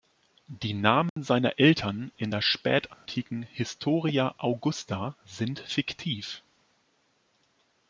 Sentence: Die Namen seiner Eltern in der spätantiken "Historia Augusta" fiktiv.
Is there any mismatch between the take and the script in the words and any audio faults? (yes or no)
yes